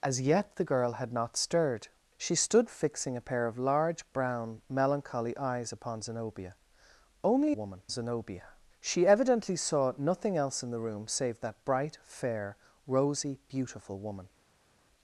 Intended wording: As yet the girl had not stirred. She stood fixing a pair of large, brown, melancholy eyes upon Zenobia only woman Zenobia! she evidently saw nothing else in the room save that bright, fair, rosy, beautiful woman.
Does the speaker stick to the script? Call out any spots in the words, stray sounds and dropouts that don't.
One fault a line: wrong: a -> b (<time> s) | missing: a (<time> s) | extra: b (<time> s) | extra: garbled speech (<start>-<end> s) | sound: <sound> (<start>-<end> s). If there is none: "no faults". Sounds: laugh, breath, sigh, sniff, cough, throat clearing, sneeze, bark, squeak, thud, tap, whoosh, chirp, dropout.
no faults